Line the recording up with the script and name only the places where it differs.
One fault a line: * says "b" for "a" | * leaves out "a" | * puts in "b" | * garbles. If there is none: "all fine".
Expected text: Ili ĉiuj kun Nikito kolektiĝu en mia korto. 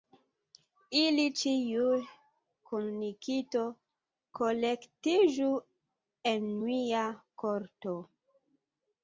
all fine